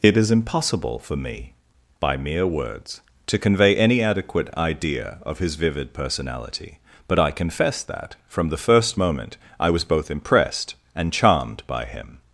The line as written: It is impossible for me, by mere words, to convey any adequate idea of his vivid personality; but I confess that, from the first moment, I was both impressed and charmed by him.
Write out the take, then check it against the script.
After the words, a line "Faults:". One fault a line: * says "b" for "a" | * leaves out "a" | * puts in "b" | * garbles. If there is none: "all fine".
It is impossible for me, by mere words, to convey any adequate idea of his vivid personality; but I confess that, from the first moment, I was both impressed and charmed by him.
Faults:
all fine